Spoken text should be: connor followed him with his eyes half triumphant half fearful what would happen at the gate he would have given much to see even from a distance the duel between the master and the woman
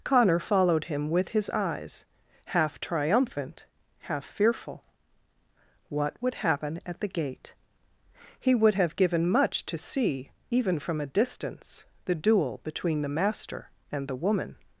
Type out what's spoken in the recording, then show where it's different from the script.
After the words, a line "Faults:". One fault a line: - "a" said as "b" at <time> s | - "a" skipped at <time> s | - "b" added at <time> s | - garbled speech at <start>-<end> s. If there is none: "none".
connor followed him with his eyes half triumphant half fearful what would happen at the gate he would have given much to see even from a distance the duel between the master and the woman
Faults:
none